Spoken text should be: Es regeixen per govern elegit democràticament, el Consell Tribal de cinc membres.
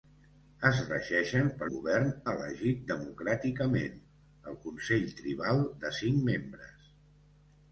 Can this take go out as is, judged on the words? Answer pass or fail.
pass